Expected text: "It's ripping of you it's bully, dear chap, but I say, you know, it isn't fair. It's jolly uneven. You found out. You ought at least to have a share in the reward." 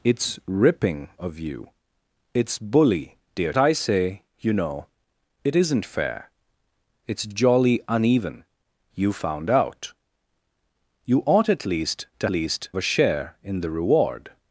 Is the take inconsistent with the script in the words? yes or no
yes